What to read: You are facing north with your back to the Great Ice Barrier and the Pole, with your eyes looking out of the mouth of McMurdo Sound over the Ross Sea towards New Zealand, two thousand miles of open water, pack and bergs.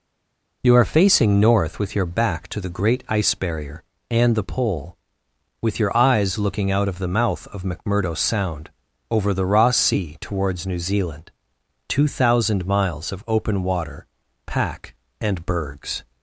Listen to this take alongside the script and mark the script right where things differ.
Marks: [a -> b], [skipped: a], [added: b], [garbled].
You are facing north with your back to the Great Ice Barrier and the Pole, with your eyes looking out of the mouth of McMurdo Sound over the Ross Sea towards New Zealand, two thousand miles of open water, pack and bergs.